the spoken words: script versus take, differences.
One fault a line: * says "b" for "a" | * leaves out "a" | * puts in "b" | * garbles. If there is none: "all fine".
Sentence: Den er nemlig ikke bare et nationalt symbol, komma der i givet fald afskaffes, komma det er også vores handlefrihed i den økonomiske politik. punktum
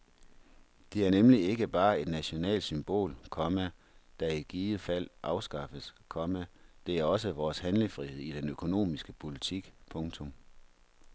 * says "Det" for "Den"